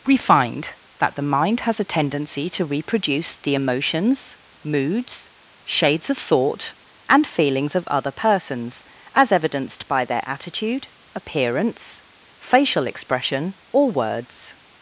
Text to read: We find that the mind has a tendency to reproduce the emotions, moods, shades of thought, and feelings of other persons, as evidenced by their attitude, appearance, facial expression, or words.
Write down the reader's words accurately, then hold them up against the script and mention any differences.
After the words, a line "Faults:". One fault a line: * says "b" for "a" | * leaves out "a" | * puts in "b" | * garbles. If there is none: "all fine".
We find that the mind has a tendency to reproduce the emotions, moods, shades of thought, and feelings of other persons, as evidenced by their attitude, appearance, facial expression, or words.
Faults:
all fine